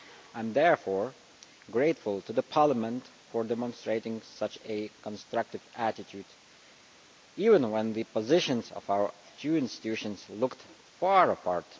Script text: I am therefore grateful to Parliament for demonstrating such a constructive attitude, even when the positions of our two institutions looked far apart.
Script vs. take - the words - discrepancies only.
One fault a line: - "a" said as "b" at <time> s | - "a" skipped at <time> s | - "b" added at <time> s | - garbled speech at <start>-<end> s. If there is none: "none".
none